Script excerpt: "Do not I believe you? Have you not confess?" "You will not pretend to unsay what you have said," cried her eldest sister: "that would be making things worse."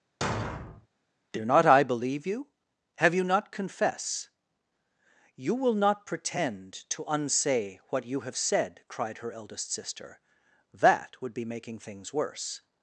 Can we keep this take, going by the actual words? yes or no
yes